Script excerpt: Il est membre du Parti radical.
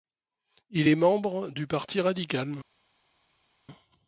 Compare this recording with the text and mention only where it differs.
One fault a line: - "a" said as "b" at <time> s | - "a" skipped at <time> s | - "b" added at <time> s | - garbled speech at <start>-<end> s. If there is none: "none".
none